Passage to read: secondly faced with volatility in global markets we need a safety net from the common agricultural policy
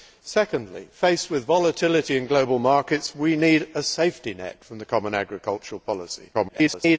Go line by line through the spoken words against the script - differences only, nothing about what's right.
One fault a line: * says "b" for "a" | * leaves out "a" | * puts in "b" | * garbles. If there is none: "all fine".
* garbles